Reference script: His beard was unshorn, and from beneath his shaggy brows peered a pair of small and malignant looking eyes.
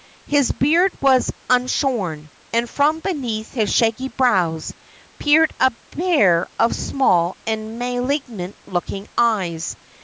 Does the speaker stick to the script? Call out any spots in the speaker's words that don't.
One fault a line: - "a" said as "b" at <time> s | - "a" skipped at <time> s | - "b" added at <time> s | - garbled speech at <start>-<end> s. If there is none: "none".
none